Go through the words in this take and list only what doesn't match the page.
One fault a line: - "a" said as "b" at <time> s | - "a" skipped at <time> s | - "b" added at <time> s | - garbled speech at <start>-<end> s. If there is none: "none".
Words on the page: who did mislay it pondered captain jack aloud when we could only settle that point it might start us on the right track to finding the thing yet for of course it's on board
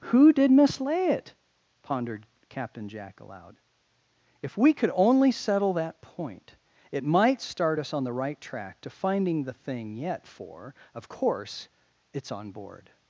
- "when" said as "if" at 4.4 s